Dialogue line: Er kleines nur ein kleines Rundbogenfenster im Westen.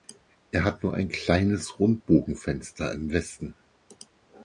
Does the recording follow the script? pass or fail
fail